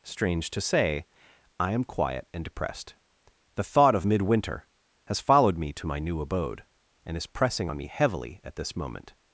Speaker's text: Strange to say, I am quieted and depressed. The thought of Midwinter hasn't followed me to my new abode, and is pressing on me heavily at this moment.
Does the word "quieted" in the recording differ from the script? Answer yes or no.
yes